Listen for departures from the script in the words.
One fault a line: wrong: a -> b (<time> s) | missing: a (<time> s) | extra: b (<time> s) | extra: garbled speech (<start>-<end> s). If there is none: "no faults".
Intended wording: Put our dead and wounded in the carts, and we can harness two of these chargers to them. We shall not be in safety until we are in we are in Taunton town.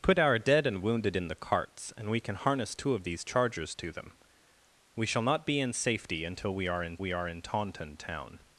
no faults